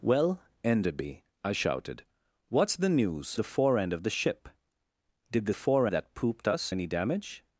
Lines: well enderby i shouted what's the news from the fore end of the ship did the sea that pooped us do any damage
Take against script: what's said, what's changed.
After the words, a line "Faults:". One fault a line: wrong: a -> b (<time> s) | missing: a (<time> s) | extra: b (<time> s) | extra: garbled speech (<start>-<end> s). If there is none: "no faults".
well enderby i shouted what's the news the fore end of the ship did the fore that pooped us any damage
Faults:
missing: from (3.4 s)
wrong: sea -> fore (5.5 s)
missing: do (6.7 s)